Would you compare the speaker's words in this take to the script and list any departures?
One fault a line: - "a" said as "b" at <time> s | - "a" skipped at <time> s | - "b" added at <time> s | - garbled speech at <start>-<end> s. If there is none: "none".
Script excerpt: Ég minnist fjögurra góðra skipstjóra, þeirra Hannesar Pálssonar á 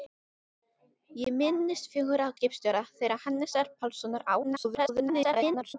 - "góðra" skipped at 2.3 s
- garbled speech at 4.4-5.7 s